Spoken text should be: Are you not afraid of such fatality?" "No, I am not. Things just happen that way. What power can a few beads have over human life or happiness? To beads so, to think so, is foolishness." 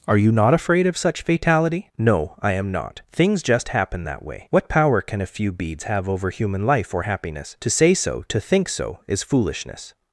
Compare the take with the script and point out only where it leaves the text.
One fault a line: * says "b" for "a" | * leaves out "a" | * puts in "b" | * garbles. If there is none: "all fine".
* says "say" for "beads"